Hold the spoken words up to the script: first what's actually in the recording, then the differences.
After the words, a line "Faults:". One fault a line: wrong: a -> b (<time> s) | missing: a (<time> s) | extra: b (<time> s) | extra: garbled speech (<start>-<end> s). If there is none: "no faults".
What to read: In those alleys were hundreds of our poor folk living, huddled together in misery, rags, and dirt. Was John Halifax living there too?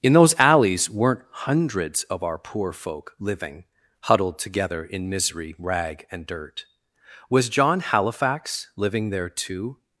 In those alleys weren't hundreds of our poor folk living, huddled together in misery, rag, and dirt. Was John Halifax living there too?
Faults:
wrong: were -> weren't (0.9 s)
wrong: rags -> rag (5.6 s)